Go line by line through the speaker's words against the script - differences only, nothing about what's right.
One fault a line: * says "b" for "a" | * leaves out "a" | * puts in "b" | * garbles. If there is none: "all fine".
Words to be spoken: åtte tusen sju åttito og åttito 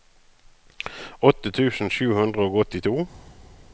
* says "hundre" for "åttito"